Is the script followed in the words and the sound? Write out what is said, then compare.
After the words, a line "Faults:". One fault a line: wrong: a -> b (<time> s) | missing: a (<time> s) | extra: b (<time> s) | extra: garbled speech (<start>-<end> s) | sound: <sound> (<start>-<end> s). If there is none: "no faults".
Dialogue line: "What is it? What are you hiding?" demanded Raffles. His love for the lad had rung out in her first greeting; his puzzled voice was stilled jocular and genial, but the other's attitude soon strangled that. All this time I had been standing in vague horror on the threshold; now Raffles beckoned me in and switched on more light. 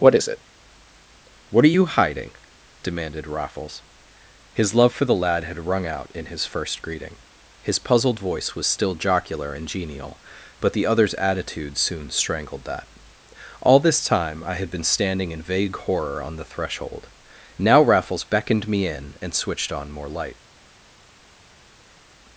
"What is it? What are you hiding?" demanded Raffles. His love for the lad had rung out in his first greeting; his puzzled voice was still jocular and genial, but the other's attitude soon strangled that. All this time I had been standing in vague horror on the threshold; now Raffles beckoned me in and switched on more light.
Faults:
wrong: her -> his (6.3 s)
wrong: stilled -> still (8.6 s)